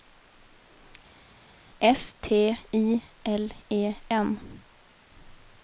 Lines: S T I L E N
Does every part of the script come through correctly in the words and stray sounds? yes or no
yes